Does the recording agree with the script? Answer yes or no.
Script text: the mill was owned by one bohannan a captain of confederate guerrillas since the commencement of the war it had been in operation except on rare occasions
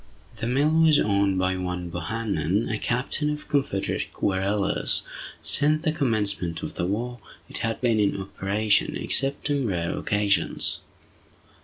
yes